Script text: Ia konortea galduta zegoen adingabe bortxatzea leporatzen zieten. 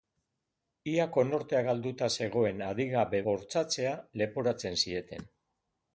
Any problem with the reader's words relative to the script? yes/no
no